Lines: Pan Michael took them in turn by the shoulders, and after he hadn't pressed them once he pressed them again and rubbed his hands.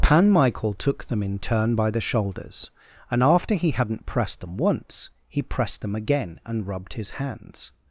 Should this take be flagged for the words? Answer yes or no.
no